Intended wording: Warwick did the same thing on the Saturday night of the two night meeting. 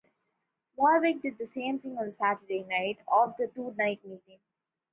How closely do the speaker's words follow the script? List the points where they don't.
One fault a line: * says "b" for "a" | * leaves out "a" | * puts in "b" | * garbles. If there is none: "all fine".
all fine